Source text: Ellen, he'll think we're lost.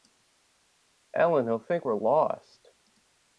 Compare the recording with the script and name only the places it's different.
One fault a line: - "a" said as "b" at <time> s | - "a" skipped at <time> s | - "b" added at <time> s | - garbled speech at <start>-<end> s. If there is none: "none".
none